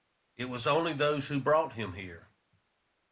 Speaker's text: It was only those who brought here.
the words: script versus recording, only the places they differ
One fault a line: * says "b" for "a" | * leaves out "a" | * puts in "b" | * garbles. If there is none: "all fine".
* puts in "him"